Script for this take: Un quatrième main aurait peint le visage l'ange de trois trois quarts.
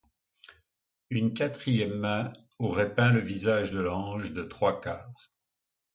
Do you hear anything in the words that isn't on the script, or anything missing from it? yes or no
yes